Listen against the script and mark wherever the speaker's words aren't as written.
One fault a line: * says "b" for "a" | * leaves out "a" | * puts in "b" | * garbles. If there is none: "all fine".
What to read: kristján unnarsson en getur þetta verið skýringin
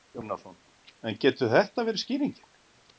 all fine